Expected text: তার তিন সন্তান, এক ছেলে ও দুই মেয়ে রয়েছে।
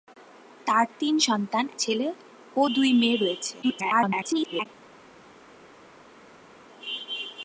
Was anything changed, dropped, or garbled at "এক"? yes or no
yes